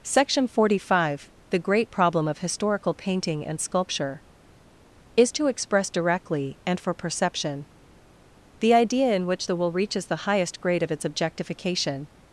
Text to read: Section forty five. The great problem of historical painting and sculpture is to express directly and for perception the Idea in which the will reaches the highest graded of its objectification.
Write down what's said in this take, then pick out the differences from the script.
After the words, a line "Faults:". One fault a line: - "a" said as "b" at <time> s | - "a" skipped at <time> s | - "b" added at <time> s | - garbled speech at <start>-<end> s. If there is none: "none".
Section forty five. The great problem of historical painting and sculpture is to express directly and for perception the Idea in which the will reaches the highest grade of its objectification.
Faults:
- "graded" said as "grade" at 10.6 s